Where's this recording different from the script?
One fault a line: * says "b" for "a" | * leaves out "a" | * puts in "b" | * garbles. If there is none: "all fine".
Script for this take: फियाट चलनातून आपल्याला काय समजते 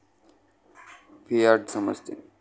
* leaves out "चलनातून आपल्याला काय"